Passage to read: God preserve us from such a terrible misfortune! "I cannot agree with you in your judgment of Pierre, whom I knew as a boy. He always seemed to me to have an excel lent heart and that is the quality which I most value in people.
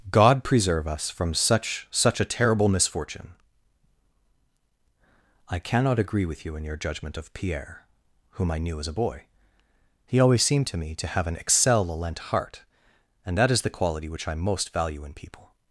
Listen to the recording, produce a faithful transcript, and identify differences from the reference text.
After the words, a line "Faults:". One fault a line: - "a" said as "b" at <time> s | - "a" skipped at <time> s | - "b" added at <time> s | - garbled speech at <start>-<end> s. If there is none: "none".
God preserve us from such such a terrible misfortune! "I cannot agree with you in your judgment of Pierre, whom I knew as a boy. He always seemed to me to have an excel lent heart and that is the quality which I most value in people.
Faults:
- "such" added at 1.9 s